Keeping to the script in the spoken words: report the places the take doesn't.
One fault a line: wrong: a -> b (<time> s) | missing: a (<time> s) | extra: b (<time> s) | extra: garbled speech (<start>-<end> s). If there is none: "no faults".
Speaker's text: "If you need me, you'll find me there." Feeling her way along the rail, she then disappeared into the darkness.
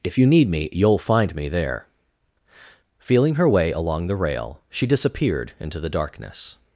missing: then (4.8 s)